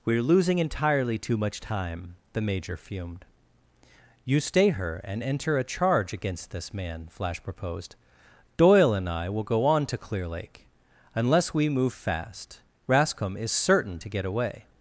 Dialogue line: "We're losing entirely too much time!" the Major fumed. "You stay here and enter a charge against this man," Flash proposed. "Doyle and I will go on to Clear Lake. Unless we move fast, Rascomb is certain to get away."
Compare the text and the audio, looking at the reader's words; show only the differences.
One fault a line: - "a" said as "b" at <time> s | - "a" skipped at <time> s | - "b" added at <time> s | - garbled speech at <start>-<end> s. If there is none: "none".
- "here" said as "her" at 4.7 s